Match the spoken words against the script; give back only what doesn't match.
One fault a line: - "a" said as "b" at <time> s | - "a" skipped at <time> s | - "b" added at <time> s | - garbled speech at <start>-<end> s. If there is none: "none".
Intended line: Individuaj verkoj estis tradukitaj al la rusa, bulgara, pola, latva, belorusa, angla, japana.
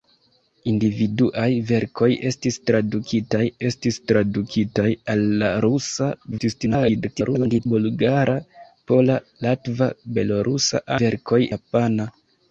- "estis tradukitaj" added at 3.7 s
- garbled speech at 6.3-7.7 s
- "angla" said as "verkoj" at 11.0 s